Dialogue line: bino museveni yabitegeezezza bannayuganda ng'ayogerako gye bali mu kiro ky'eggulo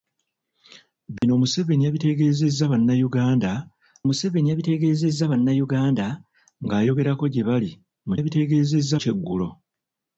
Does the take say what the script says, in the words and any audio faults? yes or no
no